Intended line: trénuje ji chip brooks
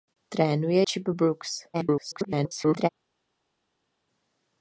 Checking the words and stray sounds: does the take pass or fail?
fail